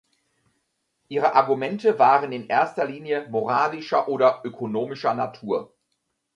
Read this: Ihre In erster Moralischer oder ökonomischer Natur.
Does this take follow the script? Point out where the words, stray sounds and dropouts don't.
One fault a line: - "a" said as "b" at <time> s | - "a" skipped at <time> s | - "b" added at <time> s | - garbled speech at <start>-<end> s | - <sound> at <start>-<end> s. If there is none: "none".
- "Argumente waren" added at 1.3 s
- "Linie" added at 2.8 s